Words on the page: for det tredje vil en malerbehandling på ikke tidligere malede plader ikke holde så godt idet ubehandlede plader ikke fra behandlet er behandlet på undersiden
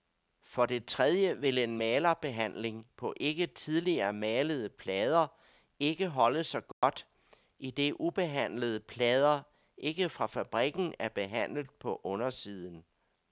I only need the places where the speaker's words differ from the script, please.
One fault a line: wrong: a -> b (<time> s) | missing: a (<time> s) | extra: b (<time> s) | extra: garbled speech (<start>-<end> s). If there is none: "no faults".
wrong: behandlet -> fabrikken (10.3 s)